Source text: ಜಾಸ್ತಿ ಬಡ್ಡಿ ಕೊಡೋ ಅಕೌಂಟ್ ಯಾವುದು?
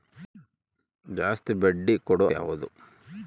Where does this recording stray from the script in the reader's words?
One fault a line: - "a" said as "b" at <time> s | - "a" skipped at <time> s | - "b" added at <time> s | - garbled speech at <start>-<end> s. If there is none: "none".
- "ಅಕೌಂಟ್" skipped at 2.3 s